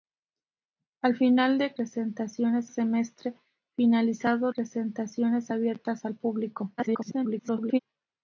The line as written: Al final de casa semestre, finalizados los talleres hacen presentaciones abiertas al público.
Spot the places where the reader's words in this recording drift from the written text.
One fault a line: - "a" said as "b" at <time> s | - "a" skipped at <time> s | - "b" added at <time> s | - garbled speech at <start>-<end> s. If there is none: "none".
- "casa" said as "presentaciones" at 1.7 s
- "los talleres hacen" skipped at 4.5 s
- garbled speech at 6.8-7.8 s